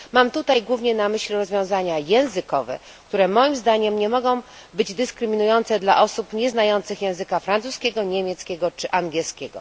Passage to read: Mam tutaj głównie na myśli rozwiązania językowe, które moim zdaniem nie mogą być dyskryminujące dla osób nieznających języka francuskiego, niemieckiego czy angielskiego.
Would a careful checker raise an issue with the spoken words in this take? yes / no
no